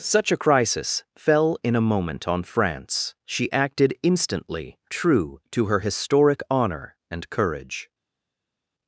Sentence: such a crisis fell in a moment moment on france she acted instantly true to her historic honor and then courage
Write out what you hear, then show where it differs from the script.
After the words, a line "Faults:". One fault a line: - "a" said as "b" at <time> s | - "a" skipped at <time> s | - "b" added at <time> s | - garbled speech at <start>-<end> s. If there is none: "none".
such a crisis fell in a moment on france she acted instantly true to her historic honor and courage
Faults:
- "moment" skipped at 2.3 s
- "then" skipped at 7.3 s